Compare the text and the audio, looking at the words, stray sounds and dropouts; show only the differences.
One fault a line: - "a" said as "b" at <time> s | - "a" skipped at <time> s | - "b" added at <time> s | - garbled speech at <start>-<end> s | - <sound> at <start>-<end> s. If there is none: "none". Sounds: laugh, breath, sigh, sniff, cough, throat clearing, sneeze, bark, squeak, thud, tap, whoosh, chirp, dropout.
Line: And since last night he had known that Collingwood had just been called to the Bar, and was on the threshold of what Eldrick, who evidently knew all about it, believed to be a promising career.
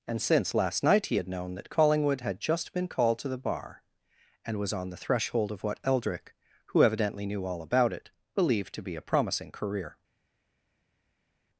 none